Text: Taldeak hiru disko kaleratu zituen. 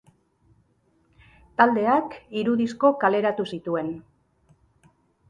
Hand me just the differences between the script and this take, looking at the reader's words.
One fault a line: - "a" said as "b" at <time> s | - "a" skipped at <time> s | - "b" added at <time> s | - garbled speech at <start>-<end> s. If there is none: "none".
none